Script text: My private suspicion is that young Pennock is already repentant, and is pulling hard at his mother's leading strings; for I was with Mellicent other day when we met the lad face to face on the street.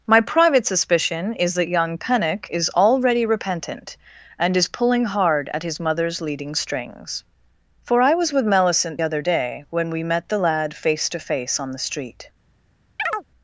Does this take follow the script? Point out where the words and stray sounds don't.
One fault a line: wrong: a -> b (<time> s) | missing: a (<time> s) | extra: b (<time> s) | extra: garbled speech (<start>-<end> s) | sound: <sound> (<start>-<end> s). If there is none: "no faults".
sound: chirp (13.0-13.2 s)